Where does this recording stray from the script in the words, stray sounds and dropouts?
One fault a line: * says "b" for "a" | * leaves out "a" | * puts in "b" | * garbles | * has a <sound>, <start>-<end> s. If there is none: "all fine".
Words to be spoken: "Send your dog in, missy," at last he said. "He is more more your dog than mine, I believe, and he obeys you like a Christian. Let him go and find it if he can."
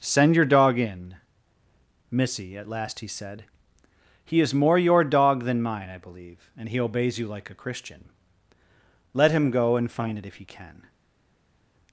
* leaves out "more"